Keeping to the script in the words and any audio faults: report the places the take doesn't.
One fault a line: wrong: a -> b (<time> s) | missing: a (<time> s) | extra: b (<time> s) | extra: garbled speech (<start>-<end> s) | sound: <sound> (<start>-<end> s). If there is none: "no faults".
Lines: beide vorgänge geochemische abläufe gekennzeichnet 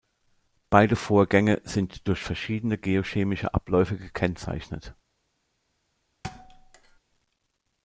extra: sind durch verschiedene (1.6 s)
sound: thud (6.2-7.0 s)